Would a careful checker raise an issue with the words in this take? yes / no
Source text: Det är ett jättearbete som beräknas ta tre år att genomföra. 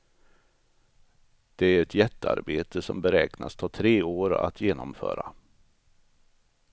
no